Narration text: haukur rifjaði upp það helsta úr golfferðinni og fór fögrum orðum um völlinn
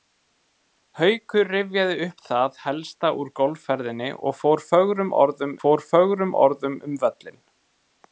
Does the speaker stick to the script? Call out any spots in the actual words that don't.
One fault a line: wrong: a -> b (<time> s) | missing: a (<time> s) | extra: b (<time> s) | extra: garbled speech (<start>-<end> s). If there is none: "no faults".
extra: fór fögrum orðum (5.6 s)